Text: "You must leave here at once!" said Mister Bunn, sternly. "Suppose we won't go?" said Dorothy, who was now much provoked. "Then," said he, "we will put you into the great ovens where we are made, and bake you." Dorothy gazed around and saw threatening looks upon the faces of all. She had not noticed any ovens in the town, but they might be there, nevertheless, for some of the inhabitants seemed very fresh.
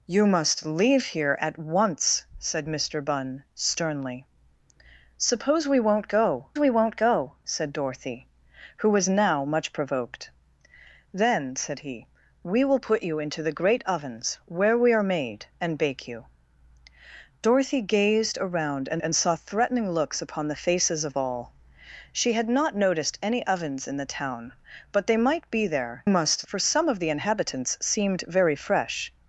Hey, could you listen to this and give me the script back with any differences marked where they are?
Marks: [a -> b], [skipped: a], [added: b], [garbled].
"You must leave here at once!" said Mister Bunn, sternly. "Suppose we won't go?" [added: we won't go] said Dorothy, who was now much provoked. "Then," said he, "we will put you into the great ovens where we are made, and bake you." Dorothy gazed around and [added: and] saw threatening looks upon the faces of all. She had not noticed any ovens in the town, but they might be there, [nevertheless, -> must] for some of the inhabitants seemed very fresh.